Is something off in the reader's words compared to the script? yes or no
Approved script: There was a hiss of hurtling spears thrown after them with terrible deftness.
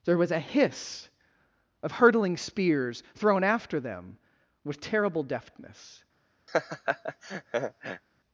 no